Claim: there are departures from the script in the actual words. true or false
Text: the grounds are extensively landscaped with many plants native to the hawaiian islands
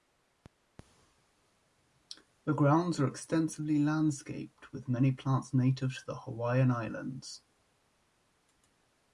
false